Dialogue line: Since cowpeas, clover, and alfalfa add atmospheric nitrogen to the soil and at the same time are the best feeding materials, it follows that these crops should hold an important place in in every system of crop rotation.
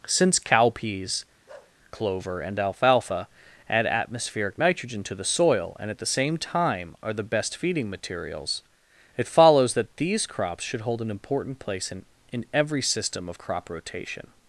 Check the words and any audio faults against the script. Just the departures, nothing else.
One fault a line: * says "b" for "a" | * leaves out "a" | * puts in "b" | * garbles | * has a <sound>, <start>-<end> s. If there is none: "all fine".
* has a bark, 1.5-1.8 s